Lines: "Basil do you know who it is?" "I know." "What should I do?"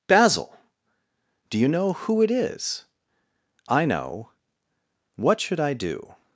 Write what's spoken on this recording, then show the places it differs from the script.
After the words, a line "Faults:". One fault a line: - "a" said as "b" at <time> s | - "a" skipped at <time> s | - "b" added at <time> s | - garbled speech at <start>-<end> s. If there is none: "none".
"Basil do you know who it is?" "I know." "What should I do?"
Faults:
none